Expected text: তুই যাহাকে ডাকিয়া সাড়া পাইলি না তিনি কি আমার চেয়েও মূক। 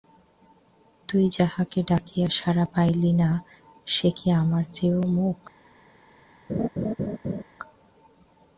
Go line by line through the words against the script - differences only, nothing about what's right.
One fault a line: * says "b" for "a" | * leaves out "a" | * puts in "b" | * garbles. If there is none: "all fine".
* says "সে" for "তিনি"